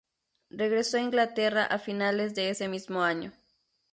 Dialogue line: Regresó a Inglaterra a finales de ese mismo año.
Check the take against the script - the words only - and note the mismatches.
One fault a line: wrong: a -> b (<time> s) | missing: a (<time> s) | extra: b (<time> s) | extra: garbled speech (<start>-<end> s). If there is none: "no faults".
no faults